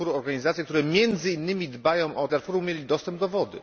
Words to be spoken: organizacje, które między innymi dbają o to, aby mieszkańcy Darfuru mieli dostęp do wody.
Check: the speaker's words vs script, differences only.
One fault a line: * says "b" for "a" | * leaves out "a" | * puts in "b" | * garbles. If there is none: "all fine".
* leaves out "to aby mieszkańcy"